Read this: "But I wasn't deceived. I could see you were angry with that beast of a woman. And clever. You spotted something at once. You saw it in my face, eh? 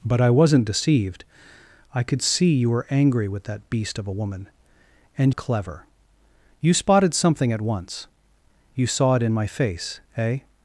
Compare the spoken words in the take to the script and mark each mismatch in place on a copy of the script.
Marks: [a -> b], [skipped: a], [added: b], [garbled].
"But I wasn't deceived. I could see you were angry with that beast of a woman. And clever. You spotted something at once. You saw it in my face, eh?